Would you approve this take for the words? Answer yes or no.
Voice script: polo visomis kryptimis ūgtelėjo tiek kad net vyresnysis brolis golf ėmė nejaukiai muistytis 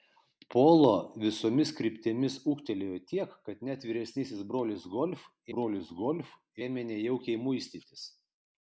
no